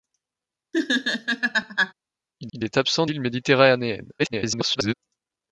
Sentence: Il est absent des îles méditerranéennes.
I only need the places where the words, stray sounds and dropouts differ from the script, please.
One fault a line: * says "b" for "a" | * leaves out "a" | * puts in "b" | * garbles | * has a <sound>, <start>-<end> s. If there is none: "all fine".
* has a laugh, 0.7-1.9 s
* puts in "il"
* leaves out "des"
* garbles